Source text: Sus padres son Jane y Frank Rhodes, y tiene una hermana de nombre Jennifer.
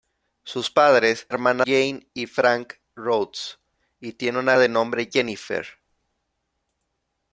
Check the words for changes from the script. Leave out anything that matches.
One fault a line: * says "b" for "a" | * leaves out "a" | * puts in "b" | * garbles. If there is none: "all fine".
* says "hermana" for "son"
* leaves out "hermana"